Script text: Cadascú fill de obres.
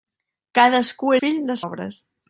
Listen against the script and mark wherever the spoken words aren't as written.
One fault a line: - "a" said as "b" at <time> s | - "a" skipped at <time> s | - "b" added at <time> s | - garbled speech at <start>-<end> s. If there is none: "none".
none